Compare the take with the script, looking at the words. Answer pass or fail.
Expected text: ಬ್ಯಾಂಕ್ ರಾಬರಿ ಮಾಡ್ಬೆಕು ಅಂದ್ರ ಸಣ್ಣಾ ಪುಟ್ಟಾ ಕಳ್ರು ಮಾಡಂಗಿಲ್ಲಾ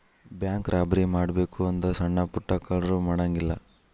pass